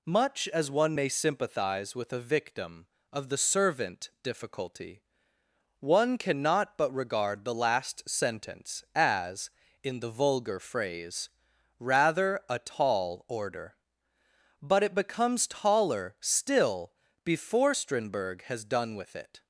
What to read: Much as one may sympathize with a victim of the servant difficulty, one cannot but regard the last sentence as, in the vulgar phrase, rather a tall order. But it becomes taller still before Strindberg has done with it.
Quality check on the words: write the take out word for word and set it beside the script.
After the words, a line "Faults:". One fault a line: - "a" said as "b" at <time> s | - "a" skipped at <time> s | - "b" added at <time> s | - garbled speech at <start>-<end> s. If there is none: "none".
Much as one may sympathize with a victim of the servant difficulty, one cannot but regard the last sentence as, in the vulgar phrase, rather a tall order. But it becomes taller still before Strindberg has done with it.
Faults:
none